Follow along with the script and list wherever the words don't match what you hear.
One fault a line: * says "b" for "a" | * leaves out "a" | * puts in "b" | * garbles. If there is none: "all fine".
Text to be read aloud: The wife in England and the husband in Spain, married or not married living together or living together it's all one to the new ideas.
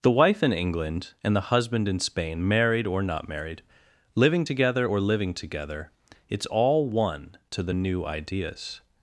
all fine